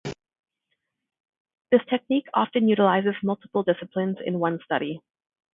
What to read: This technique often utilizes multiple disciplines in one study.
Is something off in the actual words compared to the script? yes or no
no